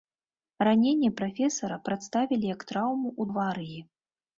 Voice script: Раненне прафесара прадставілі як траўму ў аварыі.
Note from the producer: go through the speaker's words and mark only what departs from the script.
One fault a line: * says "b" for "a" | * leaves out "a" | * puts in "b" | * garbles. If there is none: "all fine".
all fine